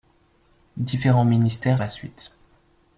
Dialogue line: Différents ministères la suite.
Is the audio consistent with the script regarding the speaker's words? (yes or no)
yes